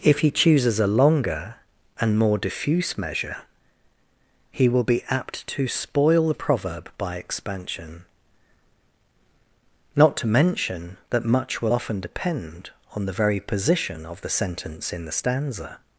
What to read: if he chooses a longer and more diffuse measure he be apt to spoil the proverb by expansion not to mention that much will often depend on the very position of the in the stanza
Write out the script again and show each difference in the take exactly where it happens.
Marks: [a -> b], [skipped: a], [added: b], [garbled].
if he chooses a longer and more diffuse measure he [added: will] be apt to spoil the proverb by expansion not to mention that much will often depend on the very position of the [added: sentence] in the stanza